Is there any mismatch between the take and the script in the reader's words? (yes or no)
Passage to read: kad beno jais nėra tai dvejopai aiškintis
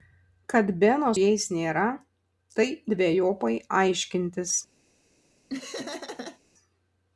no